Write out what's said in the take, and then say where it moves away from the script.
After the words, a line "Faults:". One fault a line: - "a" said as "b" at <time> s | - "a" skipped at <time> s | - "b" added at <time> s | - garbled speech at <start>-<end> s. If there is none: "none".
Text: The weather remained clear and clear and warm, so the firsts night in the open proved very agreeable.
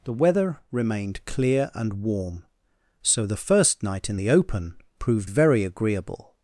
The weather remained clear and warm, so the first night in the open proved very agreeable.
Faults:
- "clear and" skipped at 2.0 s
- "firsts" said as "first" at 3.4 s